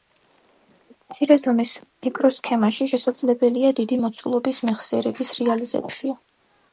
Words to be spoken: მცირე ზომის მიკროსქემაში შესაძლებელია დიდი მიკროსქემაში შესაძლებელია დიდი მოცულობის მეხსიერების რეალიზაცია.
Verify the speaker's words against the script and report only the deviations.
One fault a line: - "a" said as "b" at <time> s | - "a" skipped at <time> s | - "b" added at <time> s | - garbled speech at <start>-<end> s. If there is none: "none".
- "მიკროსქემაში შესაძლებელია დიდი" skipped at 4.0 s